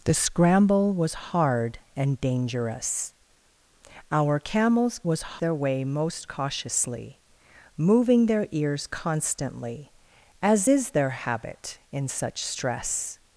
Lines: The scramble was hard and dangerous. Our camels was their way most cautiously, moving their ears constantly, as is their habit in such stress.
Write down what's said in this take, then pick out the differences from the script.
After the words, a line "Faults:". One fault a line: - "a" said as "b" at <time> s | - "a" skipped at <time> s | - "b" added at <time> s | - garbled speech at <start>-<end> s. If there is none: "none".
The scramble was hard and dangerous. Our camels was their way most cautiously, moving their ears constantly, as is their habit in such stress.
Faults:
none